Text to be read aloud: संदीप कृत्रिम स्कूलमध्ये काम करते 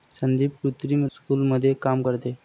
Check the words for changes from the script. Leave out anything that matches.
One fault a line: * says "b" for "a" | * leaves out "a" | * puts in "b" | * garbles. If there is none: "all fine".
all fine